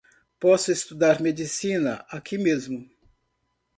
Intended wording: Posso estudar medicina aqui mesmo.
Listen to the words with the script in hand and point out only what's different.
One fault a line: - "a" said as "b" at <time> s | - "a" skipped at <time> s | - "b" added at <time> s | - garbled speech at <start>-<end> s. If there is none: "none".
none